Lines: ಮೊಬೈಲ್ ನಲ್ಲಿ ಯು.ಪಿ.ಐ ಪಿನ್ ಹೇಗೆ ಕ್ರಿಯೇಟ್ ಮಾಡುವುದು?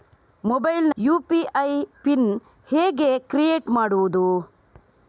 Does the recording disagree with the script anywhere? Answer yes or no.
yes